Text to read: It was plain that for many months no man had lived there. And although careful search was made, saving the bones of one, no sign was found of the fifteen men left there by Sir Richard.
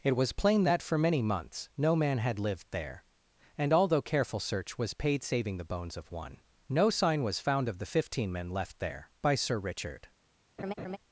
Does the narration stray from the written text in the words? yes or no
yes